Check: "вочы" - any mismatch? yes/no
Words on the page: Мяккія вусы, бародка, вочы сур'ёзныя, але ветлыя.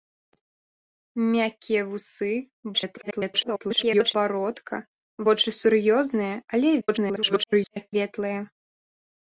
no